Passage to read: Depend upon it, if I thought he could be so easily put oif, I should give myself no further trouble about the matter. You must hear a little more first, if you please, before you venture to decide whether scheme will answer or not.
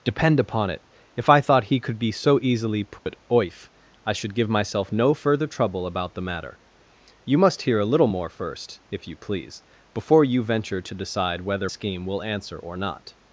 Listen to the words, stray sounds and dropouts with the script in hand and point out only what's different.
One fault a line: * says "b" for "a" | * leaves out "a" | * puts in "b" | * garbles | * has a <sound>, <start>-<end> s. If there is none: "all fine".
* has a dropout, 3.0-3.1 s